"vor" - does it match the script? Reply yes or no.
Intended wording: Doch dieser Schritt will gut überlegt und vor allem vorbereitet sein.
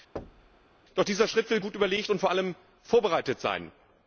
yes